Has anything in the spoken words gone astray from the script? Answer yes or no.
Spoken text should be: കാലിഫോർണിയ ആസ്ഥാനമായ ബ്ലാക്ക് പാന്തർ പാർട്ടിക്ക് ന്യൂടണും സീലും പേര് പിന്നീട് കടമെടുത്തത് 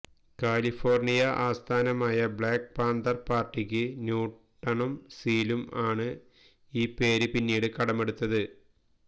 yes